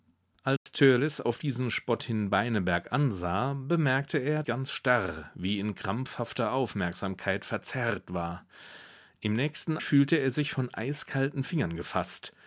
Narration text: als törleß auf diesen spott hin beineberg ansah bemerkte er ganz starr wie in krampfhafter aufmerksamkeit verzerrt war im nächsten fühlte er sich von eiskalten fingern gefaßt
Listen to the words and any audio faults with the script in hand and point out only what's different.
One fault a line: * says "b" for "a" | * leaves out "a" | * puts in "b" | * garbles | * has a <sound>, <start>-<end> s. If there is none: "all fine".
* has a dropout, 0.6-0.7 s